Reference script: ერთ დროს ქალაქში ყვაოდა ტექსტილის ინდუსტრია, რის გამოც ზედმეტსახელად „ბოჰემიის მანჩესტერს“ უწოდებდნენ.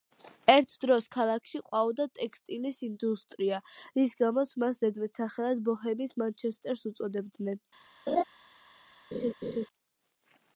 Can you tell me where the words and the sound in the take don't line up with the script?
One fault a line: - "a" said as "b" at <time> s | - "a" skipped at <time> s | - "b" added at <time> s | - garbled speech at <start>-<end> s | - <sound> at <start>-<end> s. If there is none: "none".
- "მას" added at 4.7 s
- laugh at 8.1-8.2 s
- laugh at 9.1-9.7 s